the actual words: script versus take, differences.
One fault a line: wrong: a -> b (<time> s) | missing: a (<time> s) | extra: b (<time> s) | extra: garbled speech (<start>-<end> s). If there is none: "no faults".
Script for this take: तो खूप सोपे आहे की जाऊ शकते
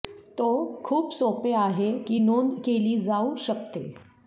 extra: नोंद केली (2.2 s)